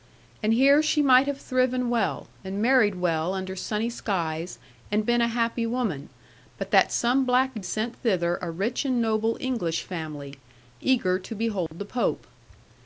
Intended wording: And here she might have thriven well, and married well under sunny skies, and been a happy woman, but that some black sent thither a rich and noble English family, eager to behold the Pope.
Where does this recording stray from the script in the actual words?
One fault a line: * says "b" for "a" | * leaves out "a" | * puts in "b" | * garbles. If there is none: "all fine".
all fine